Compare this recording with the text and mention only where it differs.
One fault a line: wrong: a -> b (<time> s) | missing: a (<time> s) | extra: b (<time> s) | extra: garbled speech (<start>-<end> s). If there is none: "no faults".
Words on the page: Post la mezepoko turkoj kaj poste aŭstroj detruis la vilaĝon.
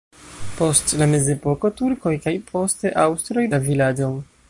missing: detruis (3.5 s)